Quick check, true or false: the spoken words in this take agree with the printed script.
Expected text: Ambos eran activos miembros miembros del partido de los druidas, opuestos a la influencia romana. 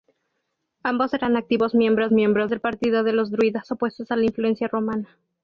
true